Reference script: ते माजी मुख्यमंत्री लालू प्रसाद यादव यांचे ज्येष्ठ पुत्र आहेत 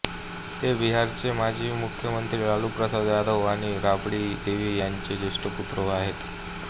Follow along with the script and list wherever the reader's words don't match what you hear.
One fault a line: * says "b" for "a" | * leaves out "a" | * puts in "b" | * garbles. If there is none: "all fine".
* puts in "बिहारचे"
* puts in "आणि राबड़ी देवी"